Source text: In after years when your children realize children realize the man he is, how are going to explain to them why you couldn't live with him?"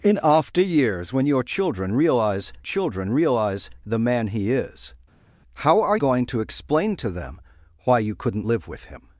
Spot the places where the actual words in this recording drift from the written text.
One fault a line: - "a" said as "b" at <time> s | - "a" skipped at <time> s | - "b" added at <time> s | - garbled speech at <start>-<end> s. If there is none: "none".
none